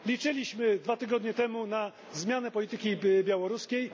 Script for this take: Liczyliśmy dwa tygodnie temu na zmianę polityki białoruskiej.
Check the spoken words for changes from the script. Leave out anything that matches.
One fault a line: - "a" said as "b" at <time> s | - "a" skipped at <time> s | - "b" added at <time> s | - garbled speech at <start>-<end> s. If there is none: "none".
none